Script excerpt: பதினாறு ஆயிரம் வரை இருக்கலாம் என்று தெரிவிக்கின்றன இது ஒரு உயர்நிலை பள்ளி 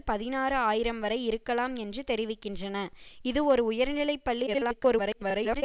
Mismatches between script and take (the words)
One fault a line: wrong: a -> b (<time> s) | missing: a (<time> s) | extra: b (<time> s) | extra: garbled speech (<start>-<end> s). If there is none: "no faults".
extra: garbled speech (4.5-5.6 s)